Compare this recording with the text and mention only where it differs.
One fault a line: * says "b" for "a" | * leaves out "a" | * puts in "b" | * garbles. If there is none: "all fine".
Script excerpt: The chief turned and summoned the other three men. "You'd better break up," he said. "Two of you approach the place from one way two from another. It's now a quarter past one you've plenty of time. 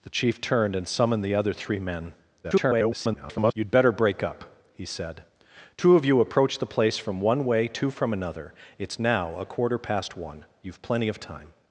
* garbles